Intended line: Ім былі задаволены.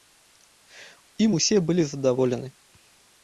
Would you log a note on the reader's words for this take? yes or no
yes